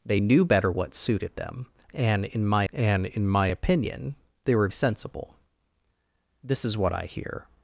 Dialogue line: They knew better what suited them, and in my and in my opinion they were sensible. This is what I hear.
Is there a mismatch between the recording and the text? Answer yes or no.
no